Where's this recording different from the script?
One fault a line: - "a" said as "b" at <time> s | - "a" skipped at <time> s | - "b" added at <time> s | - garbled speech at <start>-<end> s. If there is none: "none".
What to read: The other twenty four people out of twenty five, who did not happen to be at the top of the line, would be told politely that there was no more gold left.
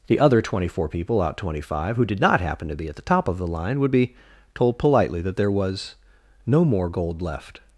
- "of" skipped at 1.4 s